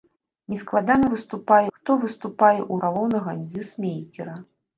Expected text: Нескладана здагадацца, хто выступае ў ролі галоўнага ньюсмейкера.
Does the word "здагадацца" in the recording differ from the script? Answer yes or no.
yes